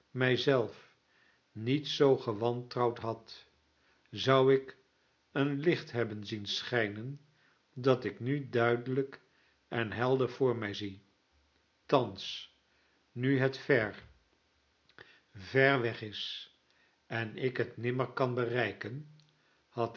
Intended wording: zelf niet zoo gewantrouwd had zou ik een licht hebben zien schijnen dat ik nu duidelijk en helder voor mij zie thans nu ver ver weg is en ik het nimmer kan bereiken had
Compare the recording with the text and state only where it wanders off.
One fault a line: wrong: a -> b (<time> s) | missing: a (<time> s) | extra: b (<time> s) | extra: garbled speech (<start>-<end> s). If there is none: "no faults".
extra: het (13.4 s)